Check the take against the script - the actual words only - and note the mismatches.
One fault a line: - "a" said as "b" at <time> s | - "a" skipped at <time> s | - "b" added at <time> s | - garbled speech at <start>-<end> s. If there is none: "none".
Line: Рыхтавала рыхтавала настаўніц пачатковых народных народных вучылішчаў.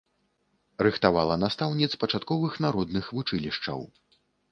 - "рыхтавала" skipped at 1.4 s
- "народных" skipped at 3.1 s